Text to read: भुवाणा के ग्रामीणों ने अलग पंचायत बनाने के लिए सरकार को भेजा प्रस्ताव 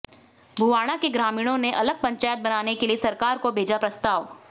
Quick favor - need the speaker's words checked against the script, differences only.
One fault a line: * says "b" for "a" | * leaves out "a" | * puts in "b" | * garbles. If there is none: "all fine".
all fine